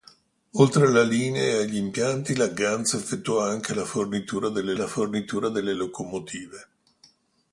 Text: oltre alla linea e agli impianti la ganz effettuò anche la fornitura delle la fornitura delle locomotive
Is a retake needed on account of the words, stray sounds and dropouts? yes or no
no